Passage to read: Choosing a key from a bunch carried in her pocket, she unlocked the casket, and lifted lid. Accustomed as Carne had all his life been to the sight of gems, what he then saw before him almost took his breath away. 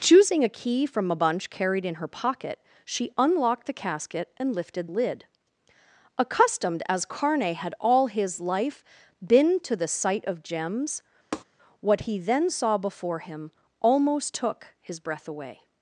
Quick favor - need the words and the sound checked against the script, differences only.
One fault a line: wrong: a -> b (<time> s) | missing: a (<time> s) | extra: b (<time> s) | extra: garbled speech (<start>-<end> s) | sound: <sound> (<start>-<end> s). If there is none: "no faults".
sound: tap (11.3-11.4 s)